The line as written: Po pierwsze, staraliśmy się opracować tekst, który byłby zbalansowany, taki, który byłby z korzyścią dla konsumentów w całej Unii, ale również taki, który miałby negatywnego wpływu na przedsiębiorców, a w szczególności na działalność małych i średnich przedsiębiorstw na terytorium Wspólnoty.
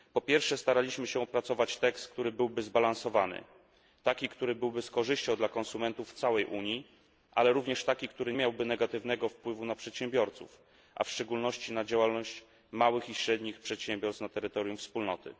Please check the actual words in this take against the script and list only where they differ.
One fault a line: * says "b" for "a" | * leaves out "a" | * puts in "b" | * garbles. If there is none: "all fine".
all fine